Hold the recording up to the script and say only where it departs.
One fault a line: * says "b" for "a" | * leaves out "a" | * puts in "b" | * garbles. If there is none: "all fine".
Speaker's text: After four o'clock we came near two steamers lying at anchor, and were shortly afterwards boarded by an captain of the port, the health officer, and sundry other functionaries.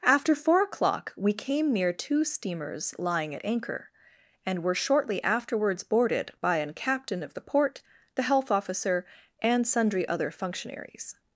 all fine